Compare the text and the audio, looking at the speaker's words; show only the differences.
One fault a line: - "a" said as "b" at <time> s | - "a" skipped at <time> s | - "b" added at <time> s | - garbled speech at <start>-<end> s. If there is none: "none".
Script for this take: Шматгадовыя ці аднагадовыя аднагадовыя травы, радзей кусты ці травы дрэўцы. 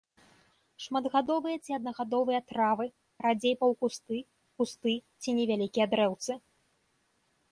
- "аднагадовыя" skipped at 2.4 s
- "паўкусты" added at 3.6 s
- "травы" said as "невялікія" at 5.4 s